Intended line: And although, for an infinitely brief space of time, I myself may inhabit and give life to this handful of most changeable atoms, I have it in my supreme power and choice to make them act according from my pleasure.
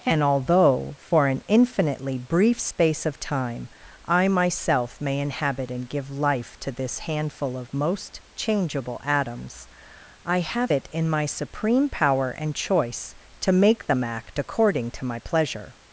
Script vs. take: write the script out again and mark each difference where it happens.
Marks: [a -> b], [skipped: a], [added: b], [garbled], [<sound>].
And although, for an infinitely brief space of time, I myself may inhabit and give life to this handful of most changeable atoms, I have it in my supreme power and choice to make them act according [from -> to] my pleasure.